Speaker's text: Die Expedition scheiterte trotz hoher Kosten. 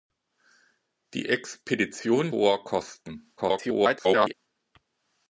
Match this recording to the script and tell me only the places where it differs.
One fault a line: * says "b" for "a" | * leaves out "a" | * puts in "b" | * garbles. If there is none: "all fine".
* leaves out "scheiterte trotz"
* garbles